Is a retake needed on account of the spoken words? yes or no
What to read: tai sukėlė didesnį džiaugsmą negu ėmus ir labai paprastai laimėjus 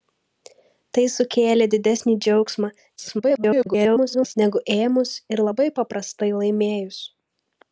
yes